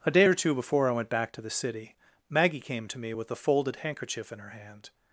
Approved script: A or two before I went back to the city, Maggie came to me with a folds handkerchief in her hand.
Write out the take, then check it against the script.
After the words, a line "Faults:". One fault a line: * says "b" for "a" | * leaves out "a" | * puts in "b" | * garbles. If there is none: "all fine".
A day or two before I went back to the city, Maggie came to me with a folded handkerchief in her hand.
Faults:
* puts in "day"
* says "folded" for "folds"